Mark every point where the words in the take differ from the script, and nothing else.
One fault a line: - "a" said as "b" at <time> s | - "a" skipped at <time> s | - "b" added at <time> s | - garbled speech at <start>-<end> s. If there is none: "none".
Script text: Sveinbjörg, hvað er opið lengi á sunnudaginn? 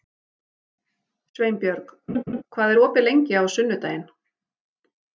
none